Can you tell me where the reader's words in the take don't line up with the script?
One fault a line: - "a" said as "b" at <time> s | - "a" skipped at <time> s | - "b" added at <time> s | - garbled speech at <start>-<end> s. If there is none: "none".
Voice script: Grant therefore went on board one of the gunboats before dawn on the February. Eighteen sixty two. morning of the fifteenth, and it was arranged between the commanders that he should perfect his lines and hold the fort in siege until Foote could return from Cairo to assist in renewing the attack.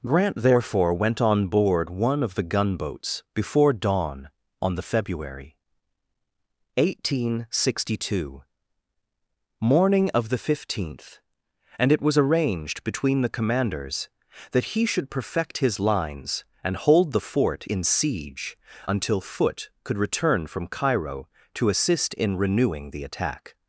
none